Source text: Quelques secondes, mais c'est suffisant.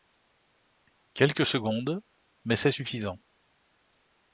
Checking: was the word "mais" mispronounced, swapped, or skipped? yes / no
no